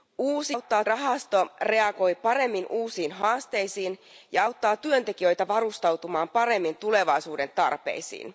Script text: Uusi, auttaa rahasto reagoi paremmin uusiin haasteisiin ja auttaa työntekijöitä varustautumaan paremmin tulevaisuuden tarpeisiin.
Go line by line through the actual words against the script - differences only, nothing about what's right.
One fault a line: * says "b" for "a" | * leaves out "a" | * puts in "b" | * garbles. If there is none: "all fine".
all fine